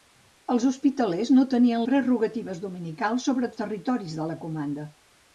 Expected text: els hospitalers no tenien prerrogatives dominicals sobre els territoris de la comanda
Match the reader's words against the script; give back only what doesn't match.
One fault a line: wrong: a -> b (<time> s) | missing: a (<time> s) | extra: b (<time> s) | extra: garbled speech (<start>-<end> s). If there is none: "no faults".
no faults